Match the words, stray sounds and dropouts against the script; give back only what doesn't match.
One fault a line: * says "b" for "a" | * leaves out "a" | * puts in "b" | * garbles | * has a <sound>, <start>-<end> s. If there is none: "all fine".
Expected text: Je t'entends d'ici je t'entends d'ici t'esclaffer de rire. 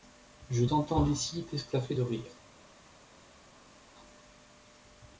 * leaves out "je t'entends d'ici"